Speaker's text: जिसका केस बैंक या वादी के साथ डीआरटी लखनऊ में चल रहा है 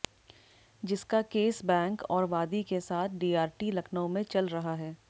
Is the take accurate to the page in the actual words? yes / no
no